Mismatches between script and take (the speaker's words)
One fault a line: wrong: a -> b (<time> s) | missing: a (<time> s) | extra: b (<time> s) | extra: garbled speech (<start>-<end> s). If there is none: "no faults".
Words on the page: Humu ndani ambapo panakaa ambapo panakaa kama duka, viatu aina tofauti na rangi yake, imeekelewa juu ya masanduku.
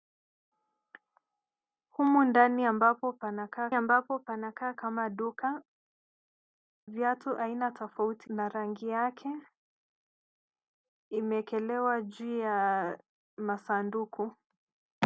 no faults